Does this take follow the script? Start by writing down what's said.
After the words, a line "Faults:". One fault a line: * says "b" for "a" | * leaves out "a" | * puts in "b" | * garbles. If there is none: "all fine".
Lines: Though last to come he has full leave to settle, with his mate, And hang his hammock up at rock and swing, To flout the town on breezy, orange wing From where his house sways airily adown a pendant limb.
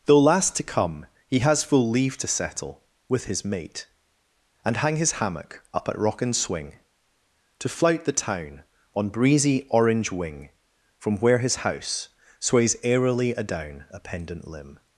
Though last to come he has full leave to settle, with his mate, And hang his hammock up at rock and swing, To flout the town on breezy, orange wing From where his house sways airily adown a pendant limb.
Faults:
all fine